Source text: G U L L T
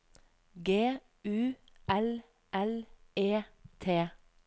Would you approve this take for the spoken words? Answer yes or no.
no